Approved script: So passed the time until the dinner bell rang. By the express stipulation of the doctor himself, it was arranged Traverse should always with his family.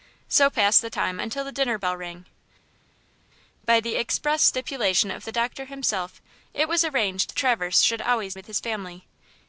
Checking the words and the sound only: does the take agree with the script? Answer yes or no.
yes